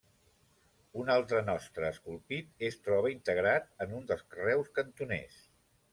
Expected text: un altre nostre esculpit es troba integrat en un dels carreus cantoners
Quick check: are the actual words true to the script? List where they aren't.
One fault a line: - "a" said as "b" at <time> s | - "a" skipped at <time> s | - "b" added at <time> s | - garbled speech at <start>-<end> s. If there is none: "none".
none